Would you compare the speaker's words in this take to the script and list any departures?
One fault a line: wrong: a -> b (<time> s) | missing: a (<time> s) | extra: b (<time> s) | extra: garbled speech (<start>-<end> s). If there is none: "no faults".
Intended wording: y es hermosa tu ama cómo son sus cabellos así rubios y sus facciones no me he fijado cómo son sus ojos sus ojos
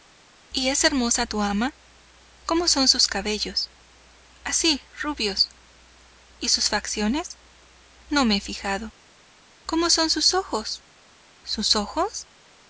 no faults